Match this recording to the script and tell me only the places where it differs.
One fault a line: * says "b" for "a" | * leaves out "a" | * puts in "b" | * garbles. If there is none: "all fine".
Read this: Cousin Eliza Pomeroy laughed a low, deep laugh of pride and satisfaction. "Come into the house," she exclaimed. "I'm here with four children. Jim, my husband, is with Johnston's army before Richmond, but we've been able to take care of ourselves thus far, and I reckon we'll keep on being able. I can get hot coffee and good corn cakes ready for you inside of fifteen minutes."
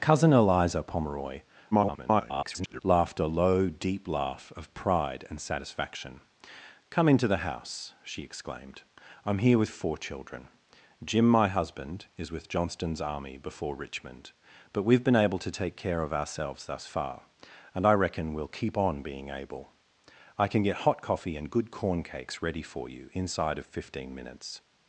* garbles